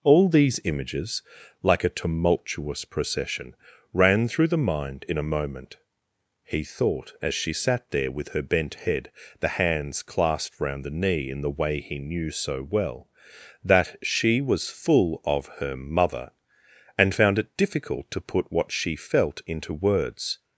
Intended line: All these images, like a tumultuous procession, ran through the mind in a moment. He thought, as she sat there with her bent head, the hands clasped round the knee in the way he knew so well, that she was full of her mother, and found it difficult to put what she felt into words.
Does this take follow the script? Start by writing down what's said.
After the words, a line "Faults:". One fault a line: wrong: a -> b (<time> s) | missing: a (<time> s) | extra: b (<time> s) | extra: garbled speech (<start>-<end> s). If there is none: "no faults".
All these images, like a tumultuous procession, ran through the mind in a moment. He thought, as she sat there with her bent head, the hands clasped round the knee in the way he knew so well, that she was full of her mother, and found it difficult to put what she felt into words.
Faults:
no faults